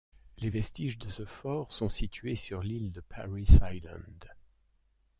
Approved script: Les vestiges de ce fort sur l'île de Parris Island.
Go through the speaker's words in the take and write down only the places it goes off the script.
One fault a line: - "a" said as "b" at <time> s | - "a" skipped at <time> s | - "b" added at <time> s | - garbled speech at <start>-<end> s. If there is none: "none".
- "sont situés" added at 1.7 s